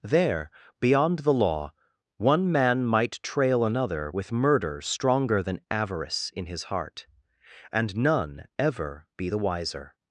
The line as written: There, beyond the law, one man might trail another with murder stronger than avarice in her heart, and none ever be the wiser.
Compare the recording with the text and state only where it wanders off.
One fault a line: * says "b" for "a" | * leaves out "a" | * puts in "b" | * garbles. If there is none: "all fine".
* says "his" for "her"